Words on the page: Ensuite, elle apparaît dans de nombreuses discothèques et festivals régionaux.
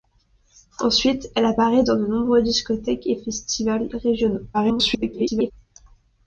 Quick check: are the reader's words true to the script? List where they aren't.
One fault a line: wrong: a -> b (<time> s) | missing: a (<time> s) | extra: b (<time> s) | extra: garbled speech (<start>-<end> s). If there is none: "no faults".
extra: garbled speech (4.5-5.5 s)